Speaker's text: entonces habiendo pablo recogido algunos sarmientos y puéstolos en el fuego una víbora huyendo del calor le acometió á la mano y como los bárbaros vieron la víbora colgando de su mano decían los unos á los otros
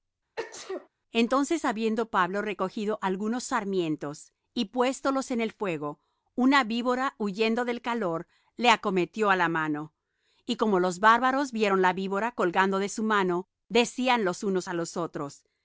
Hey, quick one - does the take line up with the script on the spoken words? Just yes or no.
yes